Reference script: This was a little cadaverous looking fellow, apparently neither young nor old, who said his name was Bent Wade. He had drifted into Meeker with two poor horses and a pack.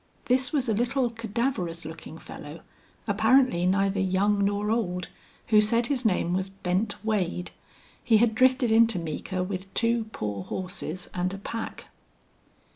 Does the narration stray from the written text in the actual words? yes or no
no